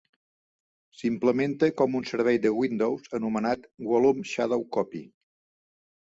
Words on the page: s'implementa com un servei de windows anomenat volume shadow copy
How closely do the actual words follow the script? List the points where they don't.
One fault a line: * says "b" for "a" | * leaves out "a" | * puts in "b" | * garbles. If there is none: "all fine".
all fine